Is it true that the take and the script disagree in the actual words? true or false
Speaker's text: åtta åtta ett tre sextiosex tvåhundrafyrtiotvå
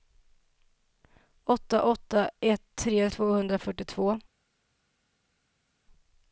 true